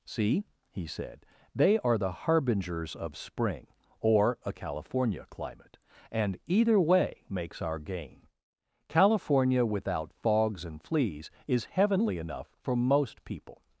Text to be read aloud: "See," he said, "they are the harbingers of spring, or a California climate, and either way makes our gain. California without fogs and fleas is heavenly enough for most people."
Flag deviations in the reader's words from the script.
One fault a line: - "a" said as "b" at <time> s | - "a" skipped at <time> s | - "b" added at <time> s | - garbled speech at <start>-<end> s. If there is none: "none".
none